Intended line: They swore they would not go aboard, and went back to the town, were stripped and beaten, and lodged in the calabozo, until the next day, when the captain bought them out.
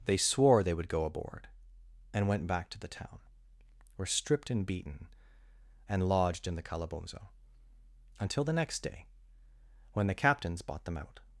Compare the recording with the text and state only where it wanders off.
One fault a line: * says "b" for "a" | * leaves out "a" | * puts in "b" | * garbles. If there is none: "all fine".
* leaves out "not"
* says "captains" for "captain"